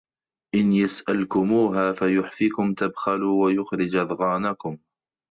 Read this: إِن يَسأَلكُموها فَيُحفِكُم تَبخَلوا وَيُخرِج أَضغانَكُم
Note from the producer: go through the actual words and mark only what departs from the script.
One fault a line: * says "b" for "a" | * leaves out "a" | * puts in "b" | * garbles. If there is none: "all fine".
all fine